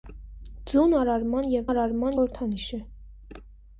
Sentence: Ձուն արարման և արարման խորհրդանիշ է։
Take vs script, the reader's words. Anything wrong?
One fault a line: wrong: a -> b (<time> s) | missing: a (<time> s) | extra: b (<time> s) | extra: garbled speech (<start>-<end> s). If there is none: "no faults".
no faults